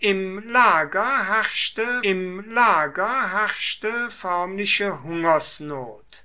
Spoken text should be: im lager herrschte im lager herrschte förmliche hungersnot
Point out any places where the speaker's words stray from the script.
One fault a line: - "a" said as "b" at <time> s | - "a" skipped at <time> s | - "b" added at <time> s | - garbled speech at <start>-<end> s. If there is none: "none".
none